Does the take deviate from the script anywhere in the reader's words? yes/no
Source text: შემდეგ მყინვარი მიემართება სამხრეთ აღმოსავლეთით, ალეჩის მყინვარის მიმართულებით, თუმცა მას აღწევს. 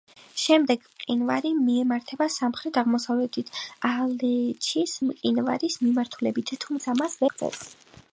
no